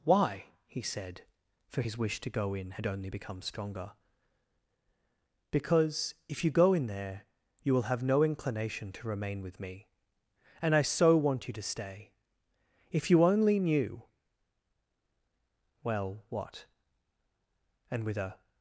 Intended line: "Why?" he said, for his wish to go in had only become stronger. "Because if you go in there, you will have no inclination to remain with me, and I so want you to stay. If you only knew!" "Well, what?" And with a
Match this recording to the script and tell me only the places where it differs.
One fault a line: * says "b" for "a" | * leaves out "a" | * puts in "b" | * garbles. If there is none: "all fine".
all fine